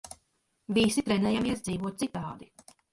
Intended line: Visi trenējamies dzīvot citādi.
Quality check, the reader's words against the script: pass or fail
pass